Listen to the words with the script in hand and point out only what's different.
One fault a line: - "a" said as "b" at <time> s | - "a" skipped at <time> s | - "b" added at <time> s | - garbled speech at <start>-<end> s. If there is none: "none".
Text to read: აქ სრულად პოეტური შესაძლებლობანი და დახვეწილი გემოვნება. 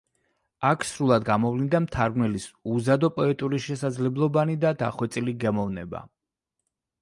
- "გამოვლინდა მთარგმნელის უზადო" added at 1.3 s